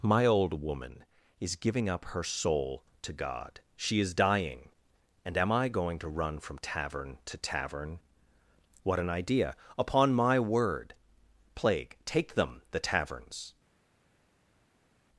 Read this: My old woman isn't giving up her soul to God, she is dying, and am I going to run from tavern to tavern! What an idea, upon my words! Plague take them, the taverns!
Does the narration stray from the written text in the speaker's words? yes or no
yes